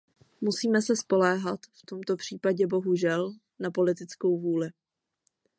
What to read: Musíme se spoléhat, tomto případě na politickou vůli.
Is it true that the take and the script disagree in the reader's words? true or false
true